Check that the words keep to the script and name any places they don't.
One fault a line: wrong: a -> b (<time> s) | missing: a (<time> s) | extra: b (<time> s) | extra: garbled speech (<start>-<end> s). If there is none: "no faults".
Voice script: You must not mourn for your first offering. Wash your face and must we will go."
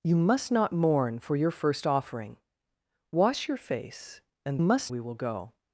no faults